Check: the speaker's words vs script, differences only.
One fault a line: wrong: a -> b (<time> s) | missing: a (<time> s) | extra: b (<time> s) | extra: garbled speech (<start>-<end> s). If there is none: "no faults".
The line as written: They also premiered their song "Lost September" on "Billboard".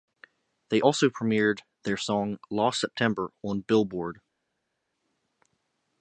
no faults